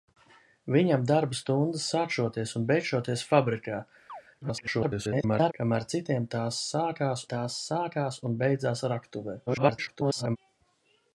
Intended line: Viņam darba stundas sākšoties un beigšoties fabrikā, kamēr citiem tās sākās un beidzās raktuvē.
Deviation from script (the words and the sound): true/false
true